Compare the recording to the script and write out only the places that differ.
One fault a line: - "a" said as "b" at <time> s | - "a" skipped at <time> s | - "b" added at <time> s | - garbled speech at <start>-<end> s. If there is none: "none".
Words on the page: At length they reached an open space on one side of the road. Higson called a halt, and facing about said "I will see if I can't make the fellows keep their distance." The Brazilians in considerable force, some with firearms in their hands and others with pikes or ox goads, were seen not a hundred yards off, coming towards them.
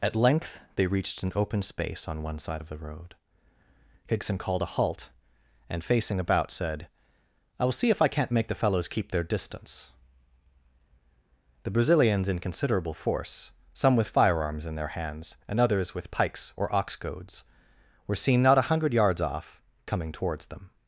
none